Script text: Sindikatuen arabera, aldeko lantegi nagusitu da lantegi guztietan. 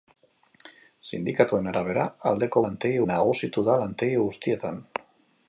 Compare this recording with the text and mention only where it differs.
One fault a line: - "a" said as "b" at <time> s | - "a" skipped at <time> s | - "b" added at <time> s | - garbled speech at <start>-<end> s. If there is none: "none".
none